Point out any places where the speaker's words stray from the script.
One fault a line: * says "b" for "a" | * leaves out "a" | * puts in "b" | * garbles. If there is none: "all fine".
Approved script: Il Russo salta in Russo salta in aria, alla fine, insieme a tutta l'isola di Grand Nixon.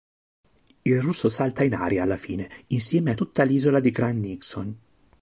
* leaves out "Russo salta in"